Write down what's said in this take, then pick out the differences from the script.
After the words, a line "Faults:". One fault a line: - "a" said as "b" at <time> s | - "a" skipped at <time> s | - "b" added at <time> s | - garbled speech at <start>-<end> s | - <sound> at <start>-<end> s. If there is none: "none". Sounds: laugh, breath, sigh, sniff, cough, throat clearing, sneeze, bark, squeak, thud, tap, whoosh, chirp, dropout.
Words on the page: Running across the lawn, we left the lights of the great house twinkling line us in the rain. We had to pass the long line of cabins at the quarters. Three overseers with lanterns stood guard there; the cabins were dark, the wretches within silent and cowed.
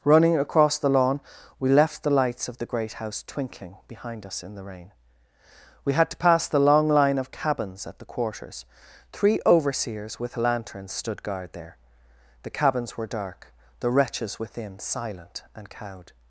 Running across the lawn, we left the lights of the great house twinkling behind us in the rain. We had to pass the long line of cabins at the quarters. Three overseers with lanterns stood guard there; the cabins were dark, the wretches within silent and cowed.
Faults:
- "line" said as "behind" at 3.9 s